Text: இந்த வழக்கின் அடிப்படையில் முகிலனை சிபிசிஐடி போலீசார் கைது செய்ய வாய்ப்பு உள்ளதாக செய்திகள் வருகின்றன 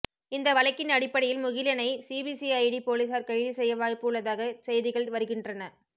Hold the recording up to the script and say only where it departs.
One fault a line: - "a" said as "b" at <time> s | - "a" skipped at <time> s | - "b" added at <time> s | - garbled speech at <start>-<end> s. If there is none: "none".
none